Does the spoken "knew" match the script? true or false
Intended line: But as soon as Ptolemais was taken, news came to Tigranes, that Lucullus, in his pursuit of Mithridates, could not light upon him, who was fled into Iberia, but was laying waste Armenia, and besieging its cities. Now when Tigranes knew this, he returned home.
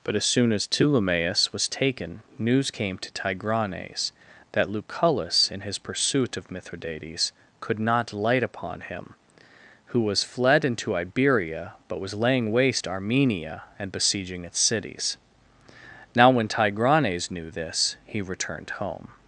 true